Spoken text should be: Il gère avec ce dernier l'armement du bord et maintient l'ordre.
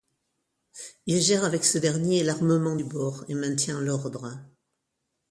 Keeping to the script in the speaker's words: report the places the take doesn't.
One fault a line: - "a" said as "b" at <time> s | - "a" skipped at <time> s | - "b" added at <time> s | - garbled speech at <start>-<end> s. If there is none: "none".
none